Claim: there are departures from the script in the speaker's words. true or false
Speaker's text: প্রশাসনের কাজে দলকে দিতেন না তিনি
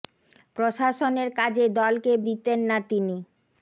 false